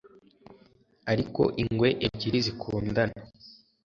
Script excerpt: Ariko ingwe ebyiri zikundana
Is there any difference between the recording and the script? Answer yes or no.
no